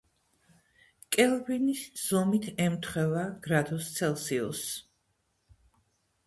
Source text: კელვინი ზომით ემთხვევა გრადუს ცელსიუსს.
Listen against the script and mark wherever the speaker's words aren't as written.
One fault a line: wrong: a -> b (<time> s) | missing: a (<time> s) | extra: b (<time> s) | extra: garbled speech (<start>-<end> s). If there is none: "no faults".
no faults